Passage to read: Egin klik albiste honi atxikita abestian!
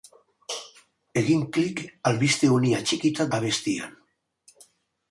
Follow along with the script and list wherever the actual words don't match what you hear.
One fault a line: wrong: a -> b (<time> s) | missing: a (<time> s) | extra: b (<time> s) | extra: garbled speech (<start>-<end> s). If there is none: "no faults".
no faults